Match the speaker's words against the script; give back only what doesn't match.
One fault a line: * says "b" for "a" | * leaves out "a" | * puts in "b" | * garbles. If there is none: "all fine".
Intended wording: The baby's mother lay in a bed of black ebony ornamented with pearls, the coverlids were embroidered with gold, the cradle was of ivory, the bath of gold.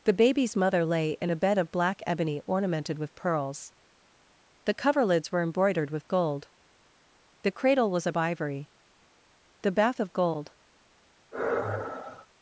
all fine